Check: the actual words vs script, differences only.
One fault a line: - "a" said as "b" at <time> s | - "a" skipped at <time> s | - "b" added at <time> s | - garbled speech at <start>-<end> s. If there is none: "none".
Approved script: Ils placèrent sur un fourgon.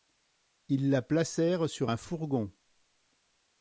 - "la" added at 0.9 s